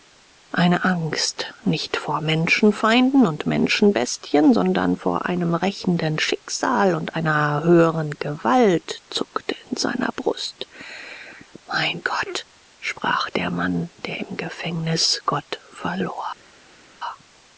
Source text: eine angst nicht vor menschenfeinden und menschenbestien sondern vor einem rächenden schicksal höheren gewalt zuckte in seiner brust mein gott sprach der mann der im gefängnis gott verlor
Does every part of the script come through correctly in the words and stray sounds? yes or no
no